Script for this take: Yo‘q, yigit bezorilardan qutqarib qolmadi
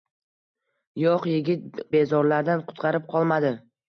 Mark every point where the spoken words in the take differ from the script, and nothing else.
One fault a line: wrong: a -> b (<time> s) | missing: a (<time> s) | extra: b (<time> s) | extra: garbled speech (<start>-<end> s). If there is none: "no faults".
no faults